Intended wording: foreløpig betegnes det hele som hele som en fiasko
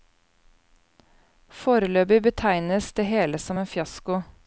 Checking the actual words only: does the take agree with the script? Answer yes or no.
no